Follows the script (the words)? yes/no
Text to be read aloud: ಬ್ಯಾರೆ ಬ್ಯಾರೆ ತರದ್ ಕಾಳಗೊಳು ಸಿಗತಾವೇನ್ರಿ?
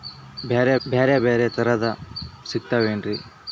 no